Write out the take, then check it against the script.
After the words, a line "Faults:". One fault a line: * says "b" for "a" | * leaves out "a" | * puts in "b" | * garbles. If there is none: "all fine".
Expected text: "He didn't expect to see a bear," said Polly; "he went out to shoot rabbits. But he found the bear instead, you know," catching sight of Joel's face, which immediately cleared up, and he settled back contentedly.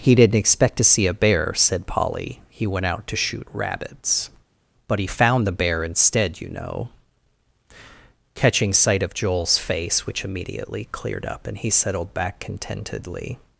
"He didn't expect to see a bear," said Polly; "he went out to shoot rabbits. But he found the bear instead, you know," catching sight of Joel's face, which immediately cleared up, and he settled back contentedly.
Faults:
all fine